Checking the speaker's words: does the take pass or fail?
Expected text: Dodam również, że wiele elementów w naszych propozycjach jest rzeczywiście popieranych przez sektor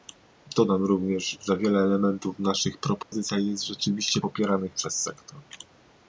pass